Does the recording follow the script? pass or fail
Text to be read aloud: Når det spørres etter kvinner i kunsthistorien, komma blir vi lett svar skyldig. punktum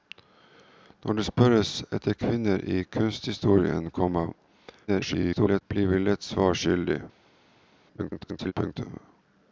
fail